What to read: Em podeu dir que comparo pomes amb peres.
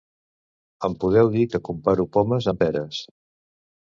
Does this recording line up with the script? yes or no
yes